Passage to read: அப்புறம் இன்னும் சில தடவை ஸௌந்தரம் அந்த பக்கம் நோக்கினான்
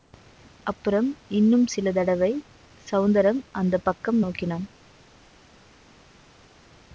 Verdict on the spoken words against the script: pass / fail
pass